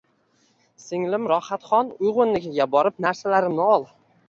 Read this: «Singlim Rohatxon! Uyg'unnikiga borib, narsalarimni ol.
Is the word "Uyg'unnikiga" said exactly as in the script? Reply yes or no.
yes